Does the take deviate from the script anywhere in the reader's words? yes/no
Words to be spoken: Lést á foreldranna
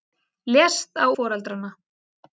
no